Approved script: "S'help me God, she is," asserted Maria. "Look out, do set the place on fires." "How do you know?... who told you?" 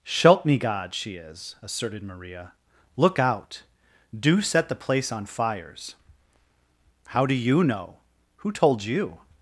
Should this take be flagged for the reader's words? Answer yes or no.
no